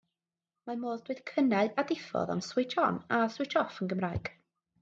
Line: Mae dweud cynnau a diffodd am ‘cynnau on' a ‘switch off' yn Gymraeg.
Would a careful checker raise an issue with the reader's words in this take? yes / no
yes